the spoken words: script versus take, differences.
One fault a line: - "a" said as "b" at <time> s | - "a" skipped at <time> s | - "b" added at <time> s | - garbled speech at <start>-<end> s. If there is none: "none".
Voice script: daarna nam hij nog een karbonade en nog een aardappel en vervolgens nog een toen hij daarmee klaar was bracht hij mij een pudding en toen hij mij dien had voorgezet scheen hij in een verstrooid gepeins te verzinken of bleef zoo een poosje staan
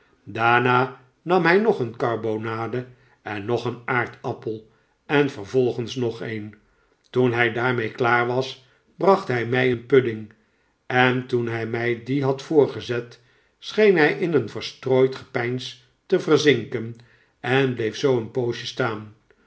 - "of" said as "en" at 17.4 s